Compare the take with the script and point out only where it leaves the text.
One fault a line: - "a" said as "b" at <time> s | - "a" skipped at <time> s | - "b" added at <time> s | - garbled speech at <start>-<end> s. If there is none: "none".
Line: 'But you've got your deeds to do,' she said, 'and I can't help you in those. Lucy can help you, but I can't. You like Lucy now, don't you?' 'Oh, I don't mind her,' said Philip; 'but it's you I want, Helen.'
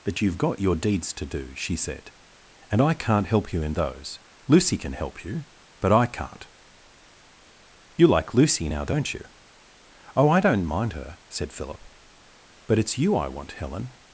none